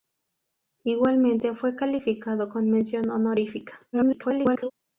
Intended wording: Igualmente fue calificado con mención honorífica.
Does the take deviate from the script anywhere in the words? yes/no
yes